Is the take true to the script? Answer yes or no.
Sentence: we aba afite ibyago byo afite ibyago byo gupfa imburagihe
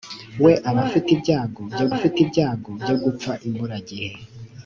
yes